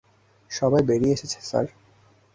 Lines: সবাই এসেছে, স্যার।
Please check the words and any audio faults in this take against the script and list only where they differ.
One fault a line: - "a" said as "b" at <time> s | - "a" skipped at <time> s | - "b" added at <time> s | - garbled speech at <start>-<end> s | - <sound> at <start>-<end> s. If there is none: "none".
- "বেরিয়ে" added at 0.8 s